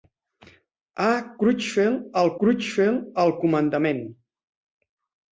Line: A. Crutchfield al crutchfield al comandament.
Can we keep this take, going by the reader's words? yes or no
yes